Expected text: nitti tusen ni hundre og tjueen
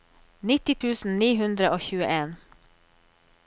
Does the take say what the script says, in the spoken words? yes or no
yes